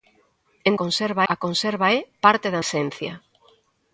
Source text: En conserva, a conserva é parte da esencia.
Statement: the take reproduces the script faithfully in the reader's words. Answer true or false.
true